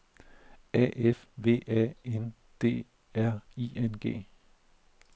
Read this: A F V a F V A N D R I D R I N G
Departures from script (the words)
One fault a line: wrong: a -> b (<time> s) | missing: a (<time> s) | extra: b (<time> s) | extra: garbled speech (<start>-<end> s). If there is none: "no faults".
missing: F V A (1.9 s)
missing: D R I (3.7 s)